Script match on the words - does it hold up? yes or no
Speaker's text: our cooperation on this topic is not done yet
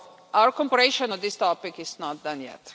yes